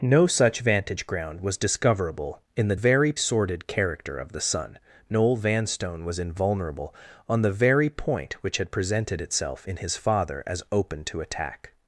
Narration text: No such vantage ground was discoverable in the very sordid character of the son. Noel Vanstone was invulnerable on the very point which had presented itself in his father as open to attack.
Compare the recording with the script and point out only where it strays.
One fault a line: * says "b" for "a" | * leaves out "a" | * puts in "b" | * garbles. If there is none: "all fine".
all fine